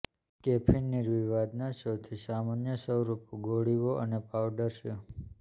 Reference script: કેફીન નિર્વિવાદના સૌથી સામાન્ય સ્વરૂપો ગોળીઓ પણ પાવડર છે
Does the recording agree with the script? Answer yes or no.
no